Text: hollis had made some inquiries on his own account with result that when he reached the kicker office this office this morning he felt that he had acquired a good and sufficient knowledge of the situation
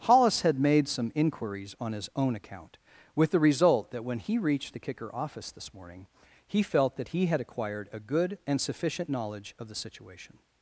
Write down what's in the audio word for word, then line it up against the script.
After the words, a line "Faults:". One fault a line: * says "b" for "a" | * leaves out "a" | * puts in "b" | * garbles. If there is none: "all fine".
hollis had made some inquiries on his own account with the result that when he reached the kicker office this morning he felt that he had acquired a good and sufficient knowledge of the situation
Faults:
* puts in "the"
* leaves out "office this"